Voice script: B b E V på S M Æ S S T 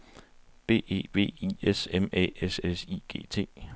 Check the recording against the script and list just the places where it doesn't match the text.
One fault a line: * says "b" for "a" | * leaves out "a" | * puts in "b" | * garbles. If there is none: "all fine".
* leaves out "b"
* says "I" for "på"
* puts in "I G"